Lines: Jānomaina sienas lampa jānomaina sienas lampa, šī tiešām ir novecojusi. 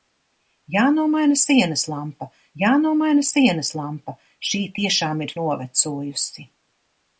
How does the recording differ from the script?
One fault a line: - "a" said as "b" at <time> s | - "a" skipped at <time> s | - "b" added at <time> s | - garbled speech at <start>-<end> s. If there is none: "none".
none